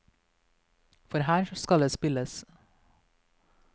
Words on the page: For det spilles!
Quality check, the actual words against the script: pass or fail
fail